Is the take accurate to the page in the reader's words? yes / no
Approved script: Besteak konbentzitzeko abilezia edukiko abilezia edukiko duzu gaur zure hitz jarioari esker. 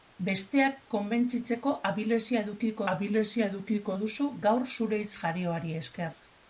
yes